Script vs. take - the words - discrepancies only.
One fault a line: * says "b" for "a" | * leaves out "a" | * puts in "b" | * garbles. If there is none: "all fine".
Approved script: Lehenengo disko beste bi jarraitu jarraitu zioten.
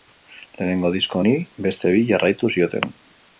* puts in "honi"
* leaves out "jarraitu"